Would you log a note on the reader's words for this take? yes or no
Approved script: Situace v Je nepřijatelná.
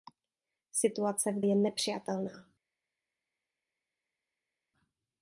no